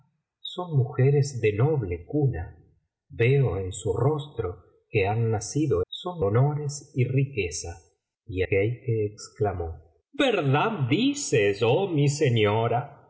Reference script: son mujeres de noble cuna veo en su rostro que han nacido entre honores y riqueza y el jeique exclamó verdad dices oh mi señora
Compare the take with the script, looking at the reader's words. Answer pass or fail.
fail